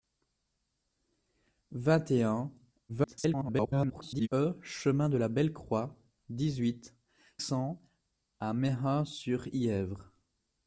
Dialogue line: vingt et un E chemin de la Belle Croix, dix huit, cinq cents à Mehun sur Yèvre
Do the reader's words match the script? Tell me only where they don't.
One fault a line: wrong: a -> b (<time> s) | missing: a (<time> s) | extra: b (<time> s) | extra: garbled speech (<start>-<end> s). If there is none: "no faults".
extra: garbled speech (2.9-4.3 s)
missing: cinq (7.0 s)